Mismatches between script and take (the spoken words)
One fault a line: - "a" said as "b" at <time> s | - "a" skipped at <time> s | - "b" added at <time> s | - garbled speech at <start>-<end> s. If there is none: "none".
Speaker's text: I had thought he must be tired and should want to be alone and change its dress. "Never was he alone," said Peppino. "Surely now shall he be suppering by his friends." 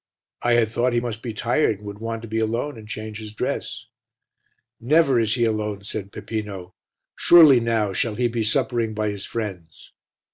- "should" said as "would" at 1.8 s
- "its" said as "his" at 3.2 s
- "was" said as "is" at 5.2 s